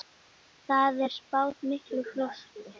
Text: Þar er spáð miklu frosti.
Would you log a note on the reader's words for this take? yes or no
no